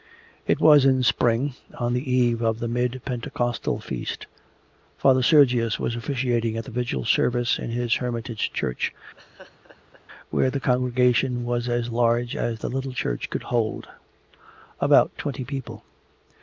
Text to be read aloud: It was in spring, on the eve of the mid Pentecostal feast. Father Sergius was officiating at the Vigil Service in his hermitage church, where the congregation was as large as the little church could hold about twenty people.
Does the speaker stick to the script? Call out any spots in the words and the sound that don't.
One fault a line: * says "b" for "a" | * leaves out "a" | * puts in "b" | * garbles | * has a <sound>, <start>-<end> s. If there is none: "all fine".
* has a laugh, 9.1-10.0 s